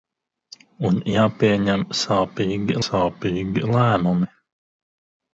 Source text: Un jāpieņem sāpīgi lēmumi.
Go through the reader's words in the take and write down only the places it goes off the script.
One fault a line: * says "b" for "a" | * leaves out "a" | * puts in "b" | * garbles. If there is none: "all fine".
* puts in "sāpīgi"